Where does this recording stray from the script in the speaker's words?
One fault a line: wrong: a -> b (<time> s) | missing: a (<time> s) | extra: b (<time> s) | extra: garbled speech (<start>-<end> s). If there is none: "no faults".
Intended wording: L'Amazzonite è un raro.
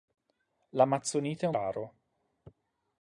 no faults